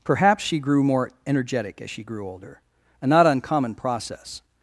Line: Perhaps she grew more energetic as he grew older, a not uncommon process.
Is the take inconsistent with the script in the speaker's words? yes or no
yes